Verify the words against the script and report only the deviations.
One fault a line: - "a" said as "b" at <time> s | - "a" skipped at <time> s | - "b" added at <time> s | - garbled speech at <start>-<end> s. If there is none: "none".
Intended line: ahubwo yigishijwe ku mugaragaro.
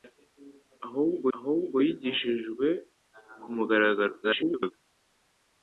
- "ahubwo" added at 1.4 s
- garbled speech at 4.2-4.7 s